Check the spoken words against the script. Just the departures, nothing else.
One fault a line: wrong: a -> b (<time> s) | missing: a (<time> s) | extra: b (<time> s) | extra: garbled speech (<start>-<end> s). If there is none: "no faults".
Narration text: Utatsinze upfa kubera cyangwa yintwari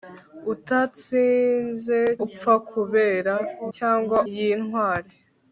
no faults